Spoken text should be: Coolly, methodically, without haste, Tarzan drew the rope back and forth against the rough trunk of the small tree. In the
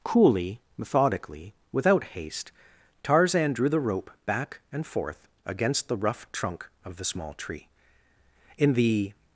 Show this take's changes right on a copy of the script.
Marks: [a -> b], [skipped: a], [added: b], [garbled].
Coolly, methodically, without haste, Tarzan drew the rope back and forth against the rough trunk of the small tree. In the